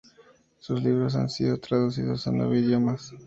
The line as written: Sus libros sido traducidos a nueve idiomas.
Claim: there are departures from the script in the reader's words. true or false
true